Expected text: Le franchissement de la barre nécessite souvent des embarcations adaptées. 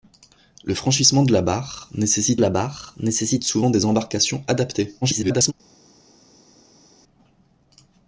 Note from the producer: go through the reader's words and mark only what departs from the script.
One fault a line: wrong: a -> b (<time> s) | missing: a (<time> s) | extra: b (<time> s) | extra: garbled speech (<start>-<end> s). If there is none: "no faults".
extra: la barre nécessite (2.4 s)
extra: garbled speech (5.0-5.5 s)